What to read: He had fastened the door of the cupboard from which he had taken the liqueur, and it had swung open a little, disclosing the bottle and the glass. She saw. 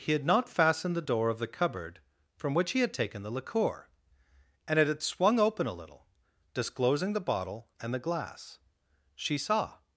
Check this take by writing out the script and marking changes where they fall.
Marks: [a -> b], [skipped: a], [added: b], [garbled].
He had [added: not] fastened the door of the cupboard from which he had taken the liqueur, and it had swung open a little, disclosing the bottle and the glass. She saw.